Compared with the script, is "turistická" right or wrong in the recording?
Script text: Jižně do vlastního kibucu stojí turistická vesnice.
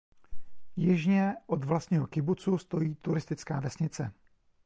right